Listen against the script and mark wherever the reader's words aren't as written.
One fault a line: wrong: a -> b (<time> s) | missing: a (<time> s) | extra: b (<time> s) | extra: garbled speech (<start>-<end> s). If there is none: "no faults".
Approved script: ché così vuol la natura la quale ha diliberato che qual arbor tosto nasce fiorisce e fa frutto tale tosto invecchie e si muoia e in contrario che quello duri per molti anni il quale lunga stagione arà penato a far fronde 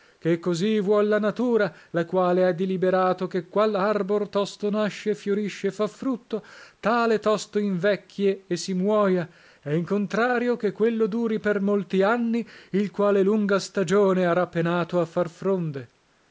no faults